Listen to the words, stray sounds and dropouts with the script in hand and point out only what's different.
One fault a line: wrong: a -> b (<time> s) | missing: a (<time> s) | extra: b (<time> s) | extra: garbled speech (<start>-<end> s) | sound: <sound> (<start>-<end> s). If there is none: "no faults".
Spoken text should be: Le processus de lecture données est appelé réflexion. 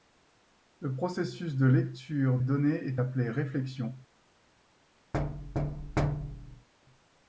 sound: thud (5.1-6.7 s)